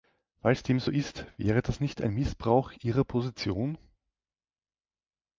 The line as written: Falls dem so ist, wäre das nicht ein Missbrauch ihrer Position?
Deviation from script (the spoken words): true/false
false